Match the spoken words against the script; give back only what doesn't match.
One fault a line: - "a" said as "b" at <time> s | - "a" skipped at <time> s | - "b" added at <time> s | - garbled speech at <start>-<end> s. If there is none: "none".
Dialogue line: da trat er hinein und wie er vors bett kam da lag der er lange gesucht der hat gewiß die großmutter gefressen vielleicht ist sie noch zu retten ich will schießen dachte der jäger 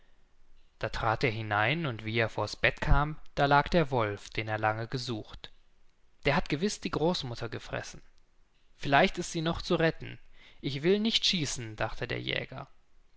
- "wolf den" added at 3.9 s
- "nicht" added at 11.0 s